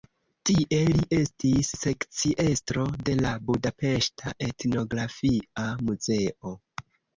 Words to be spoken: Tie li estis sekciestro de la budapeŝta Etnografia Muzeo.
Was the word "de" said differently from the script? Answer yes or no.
no